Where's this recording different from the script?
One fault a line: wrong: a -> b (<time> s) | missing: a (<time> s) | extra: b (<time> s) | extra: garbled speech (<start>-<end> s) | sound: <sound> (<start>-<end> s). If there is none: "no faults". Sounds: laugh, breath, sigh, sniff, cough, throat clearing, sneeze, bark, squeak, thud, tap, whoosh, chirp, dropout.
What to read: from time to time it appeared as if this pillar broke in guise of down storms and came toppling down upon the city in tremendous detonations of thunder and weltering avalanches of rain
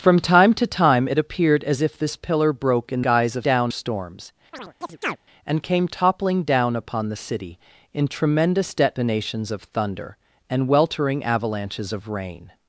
sound: chirp (4.5-5.2 s)